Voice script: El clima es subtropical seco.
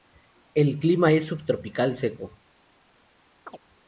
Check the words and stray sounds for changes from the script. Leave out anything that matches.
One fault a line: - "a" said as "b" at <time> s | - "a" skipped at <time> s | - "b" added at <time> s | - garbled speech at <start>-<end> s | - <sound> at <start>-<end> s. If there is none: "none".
- chirp at 3.5-3.6 s